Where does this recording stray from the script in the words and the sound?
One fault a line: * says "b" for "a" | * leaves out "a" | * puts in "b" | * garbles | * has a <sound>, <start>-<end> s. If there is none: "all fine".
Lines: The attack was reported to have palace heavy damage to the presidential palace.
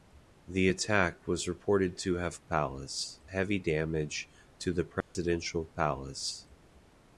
* has a dropout, 5.0-5.1 s